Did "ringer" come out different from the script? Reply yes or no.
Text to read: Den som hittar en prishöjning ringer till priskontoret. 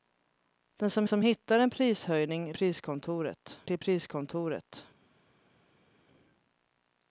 yes